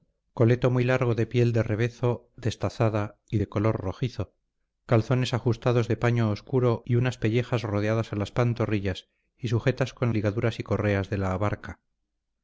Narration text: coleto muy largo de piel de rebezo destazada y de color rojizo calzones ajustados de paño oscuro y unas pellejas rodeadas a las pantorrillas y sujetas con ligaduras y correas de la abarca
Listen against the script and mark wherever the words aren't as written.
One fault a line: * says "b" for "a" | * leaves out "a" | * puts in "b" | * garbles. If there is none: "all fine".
all fine